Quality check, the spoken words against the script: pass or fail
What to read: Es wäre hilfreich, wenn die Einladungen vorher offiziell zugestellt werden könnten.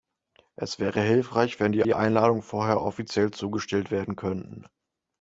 fail